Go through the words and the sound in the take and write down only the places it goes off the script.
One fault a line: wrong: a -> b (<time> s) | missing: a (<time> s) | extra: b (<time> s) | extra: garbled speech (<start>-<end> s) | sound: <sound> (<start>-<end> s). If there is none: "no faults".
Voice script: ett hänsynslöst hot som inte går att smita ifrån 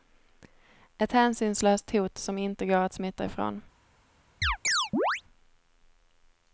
sound: chirp (4.4-5.2 s)